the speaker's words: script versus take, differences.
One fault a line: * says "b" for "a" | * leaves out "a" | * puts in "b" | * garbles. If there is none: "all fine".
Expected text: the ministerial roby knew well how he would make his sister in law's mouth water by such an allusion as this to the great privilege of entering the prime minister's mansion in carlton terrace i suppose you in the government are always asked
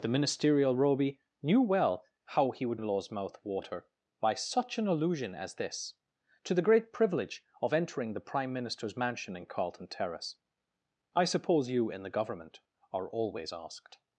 * leaves out "make his sister"